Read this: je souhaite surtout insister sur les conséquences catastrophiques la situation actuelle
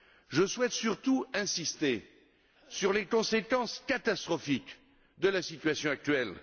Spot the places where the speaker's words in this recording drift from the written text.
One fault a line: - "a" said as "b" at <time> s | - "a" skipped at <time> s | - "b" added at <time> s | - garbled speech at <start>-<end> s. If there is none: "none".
- "de" added at 5.2 s